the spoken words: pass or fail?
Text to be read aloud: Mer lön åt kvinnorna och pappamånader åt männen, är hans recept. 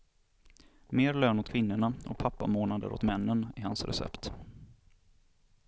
pass